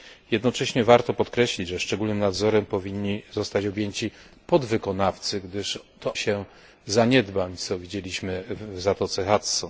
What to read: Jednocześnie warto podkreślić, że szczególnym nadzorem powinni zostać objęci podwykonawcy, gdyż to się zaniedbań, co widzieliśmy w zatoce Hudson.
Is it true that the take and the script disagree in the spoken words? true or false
false